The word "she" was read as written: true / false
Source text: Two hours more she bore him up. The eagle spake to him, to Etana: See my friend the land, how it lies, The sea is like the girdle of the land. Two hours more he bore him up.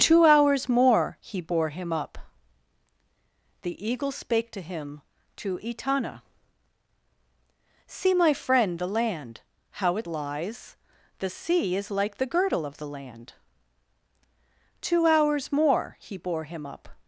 false